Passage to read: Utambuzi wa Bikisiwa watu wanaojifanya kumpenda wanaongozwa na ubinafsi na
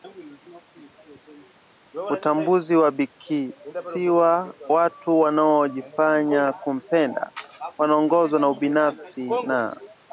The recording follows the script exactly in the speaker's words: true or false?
true